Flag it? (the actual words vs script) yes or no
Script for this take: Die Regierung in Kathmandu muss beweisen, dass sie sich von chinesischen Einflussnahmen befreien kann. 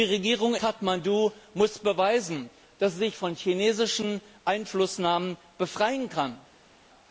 yes